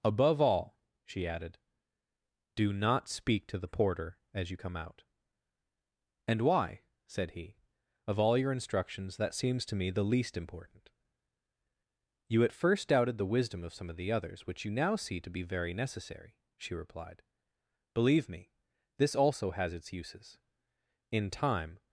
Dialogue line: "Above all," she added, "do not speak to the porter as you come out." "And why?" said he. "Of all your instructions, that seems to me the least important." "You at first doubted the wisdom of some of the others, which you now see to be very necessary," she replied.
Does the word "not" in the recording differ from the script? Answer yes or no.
no